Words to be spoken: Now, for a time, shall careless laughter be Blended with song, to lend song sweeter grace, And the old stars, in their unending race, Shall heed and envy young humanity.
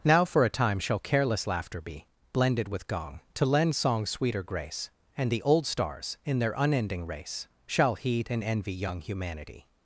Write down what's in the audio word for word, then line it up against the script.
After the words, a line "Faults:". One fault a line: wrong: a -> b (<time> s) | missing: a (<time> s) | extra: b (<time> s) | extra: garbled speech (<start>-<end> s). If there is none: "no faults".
Now, for a time, shall careless laughter be Blended with gong, to lend song sweeter grace, And the old stars, in their unending race, Shall heed and envy young humanity.
Faults:
wrong: song -> gong (2.9 s)